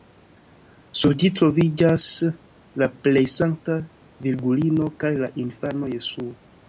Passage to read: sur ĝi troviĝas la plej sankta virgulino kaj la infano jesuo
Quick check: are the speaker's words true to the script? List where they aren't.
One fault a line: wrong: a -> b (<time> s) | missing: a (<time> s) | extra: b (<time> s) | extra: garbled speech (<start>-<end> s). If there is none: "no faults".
no faults